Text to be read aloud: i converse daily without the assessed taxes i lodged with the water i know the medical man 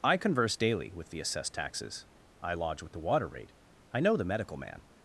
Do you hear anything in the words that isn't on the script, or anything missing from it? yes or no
yes